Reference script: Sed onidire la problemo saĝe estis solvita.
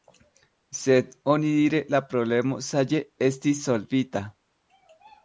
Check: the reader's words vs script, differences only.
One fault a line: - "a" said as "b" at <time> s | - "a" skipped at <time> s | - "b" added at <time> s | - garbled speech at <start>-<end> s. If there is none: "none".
none